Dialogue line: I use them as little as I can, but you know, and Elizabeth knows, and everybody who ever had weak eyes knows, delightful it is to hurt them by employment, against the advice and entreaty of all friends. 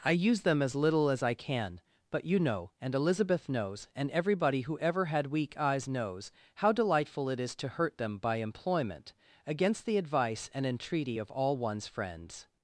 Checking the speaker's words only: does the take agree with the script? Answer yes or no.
no